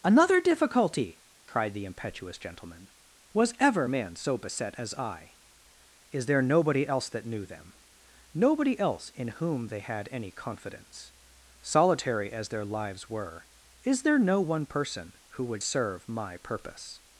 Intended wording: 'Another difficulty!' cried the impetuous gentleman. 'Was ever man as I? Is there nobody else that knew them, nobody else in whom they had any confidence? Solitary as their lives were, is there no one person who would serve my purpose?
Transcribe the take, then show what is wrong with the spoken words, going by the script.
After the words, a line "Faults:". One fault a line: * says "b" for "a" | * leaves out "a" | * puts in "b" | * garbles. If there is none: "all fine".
'Another difficulty!' cried the impetuous gentleman. 'Was ever man so beset as I? Is there nobody else that knew them, nobody else in whom they had any confidence? Solitary as their lives were, is there no one person who would serve my purpose?
Faults:
* puts in "so beset"